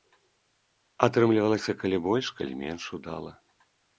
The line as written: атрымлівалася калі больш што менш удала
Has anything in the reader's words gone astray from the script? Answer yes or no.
yes